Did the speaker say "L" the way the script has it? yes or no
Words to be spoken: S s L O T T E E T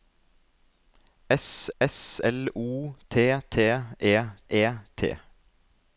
yes